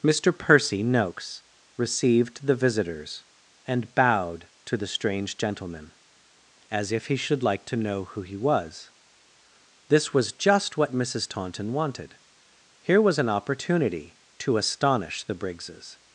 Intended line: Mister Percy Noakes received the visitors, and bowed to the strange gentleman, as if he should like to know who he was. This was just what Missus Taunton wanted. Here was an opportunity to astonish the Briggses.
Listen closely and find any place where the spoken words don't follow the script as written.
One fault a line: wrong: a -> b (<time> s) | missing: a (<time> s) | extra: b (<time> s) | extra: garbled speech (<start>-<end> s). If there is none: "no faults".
no faults